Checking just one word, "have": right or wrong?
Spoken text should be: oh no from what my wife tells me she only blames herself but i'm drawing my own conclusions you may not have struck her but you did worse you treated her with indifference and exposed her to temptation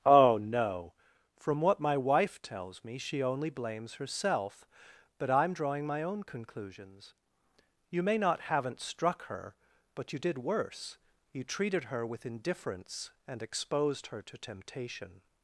wrong